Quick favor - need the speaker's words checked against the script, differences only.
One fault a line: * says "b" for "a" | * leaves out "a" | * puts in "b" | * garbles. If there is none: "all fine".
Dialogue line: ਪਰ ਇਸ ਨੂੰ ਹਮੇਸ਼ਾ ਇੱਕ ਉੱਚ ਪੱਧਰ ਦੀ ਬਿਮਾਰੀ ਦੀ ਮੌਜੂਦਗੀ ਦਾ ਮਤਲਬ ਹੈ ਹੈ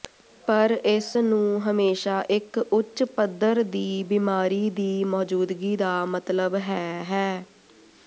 all fine